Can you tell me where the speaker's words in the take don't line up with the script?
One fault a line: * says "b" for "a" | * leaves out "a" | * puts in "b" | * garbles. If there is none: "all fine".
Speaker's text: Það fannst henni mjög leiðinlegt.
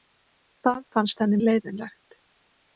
* leaves out "mjög"